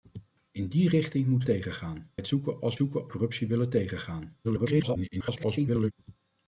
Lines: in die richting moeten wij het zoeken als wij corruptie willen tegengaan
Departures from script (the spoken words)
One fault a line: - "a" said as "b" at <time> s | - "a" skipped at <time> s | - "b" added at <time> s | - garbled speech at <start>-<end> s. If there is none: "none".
- "wij" said as "tegengaan" at 1.4 s
- "wij" said as "zoeken" at 2.7 s
- garbled speech at 4.4-5.9 s